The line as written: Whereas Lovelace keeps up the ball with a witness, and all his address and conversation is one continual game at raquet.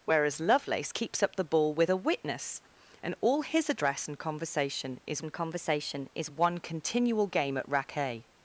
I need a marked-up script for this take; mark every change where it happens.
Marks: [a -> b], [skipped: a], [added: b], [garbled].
Whereas Lovelace keeps up the ball with a witness, and all his address and conversation is [added: and conversation is] one continual game at raquet.